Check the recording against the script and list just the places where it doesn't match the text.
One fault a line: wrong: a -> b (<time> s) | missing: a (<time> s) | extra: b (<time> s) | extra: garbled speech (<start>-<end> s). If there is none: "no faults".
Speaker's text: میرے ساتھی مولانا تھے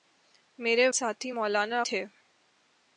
no faults